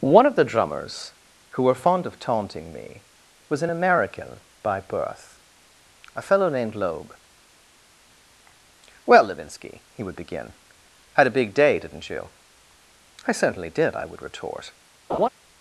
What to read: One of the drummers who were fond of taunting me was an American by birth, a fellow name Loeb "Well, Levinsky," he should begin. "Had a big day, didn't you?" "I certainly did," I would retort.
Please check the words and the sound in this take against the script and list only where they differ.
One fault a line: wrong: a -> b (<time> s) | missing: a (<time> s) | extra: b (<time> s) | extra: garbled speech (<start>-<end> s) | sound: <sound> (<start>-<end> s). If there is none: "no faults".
wrong: name -> named (6.5 s)
wrong: should -> would (10.0 s)
sound: laugh (15.1-15.3 s)